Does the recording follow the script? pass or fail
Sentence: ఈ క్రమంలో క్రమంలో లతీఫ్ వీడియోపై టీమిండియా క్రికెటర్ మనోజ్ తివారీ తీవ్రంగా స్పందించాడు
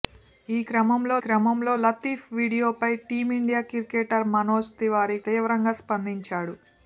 pass